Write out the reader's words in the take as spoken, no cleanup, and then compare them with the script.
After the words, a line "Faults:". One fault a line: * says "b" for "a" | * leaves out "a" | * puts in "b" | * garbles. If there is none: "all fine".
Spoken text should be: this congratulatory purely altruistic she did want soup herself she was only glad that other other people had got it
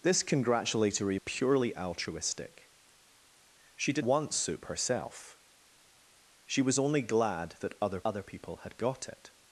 this congratulatory purely altruistic she did want soup herself she was only glad that other other people had got it
Faults:
all fine